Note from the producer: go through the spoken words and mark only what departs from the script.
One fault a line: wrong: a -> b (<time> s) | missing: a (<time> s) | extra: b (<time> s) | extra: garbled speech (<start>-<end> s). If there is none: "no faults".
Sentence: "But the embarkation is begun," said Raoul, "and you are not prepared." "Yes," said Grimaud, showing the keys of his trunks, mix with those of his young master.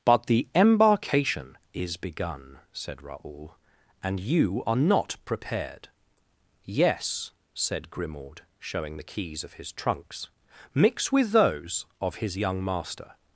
no faults